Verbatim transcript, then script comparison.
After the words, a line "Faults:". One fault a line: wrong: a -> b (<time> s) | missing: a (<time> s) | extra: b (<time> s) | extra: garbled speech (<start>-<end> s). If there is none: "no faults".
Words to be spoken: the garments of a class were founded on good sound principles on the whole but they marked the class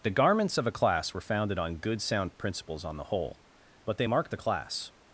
the garments of a class were founded on good sound principles on the whole but they marked the class
Faults:
no faults